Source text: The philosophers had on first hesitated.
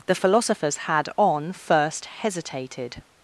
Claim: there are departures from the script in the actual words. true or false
false